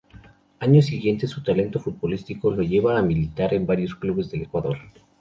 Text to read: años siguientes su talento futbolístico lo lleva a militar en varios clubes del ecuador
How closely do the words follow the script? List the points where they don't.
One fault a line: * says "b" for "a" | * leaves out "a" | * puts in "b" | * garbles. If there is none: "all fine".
all fine